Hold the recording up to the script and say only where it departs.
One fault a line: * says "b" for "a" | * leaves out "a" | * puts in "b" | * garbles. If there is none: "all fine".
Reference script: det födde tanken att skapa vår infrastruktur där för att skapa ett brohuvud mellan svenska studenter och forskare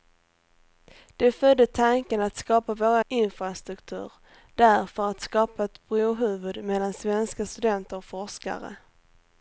all fine